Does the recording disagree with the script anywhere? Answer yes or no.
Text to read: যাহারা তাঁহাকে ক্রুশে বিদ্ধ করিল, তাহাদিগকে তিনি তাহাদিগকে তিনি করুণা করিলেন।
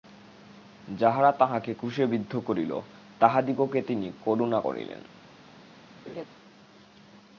yes